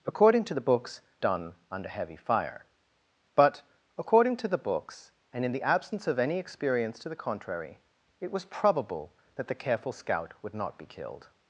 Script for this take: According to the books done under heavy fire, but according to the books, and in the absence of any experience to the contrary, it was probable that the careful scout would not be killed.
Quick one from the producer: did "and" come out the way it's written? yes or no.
yes